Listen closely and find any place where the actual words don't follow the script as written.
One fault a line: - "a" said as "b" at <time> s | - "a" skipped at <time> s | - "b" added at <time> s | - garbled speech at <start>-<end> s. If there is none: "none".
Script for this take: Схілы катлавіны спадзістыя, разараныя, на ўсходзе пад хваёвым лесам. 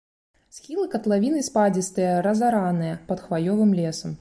- "на ўсходзе" skipped at 3.0 s